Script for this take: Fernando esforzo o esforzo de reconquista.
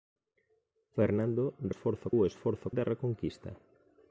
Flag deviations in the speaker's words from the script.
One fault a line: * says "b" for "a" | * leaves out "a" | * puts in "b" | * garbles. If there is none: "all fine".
all fine